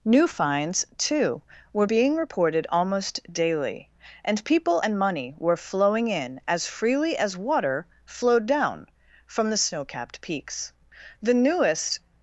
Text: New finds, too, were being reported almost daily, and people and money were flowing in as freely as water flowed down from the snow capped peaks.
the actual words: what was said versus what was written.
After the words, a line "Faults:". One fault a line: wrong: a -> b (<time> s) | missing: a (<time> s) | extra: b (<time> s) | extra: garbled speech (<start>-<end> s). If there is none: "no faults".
New finds, too, were being reported almost daily, and people and money were flowing in as freely as water flowed down from the snow capped peaks. The newest
Faults:
extra: The newest (11.2 s)